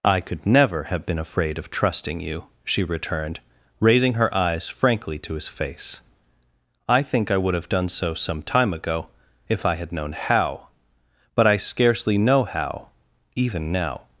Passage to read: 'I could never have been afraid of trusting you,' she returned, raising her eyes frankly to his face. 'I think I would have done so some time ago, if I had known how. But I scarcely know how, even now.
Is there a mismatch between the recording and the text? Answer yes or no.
no